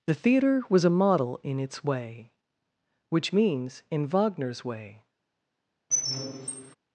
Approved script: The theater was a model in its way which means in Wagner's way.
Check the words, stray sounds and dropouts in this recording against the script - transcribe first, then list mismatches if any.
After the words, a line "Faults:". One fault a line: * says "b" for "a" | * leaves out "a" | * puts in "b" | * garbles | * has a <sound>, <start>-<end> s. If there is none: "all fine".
The theater was a model in its way which means in Wagner's way.
Faults:
* has a squeak, 5.9-6.8 s